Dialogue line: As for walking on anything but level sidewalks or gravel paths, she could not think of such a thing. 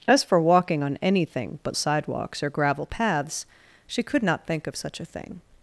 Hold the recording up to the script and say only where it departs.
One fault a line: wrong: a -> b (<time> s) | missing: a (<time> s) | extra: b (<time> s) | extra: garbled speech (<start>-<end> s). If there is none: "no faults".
missing: level (1.8 s)